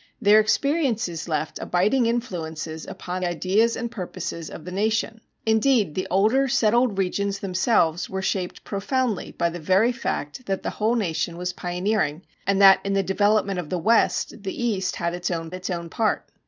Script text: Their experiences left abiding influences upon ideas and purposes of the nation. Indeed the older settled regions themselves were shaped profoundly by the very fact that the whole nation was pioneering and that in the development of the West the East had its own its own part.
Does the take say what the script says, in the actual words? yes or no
yes